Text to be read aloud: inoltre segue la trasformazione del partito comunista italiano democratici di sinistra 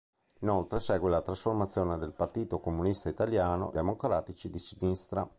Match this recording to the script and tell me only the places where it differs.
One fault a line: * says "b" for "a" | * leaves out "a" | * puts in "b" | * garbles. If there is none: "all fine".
all fine